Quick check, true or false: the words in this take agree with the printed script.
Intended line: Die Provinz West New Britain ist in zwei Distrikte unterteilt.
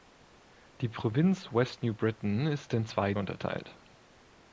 false